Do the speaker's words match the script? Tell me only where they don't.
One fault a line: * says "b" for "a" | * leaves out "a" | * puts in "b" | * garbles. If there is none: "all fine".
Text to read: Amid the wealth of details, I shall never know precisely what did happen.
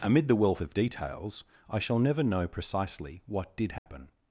all fine